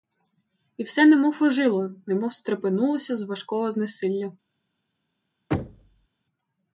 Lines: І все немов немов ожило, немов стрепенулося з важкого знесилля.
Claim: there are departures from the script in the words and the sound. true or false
true